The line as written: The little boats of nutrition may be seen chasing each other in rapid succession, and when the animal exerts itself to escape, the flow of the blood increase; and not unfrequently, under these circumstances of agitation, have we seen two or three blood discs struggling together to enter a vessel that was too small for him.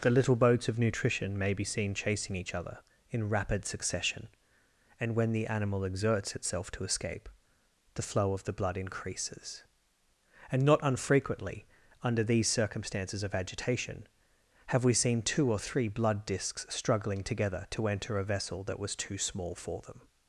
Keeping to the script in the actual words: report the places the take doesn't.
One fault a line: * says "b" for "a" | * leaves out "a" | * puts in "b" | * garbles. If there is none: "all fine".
* says "increases" for "increase"
* says "them" for "him"